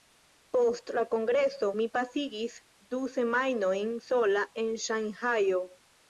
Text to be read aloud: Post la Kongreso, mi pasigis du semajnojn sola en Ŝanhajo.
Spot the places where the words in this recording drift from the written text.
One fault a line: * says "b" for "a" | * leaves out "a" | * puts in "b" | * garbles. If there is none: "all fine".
all fine